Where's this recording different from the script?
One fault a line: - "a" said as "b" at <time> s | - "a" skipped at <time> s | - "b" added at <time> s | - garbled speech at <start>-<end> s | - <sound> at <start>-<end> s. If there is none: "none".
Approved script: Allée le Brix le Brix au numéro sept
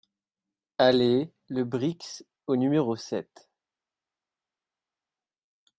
- "le Brix" skipped at 2.2 s